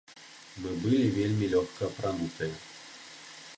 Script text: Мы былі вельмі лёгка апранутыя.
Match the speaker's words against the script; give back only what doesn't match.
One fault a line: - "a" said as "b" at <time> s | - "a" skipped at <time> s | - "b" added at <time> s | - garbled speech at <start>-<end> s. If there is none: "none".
none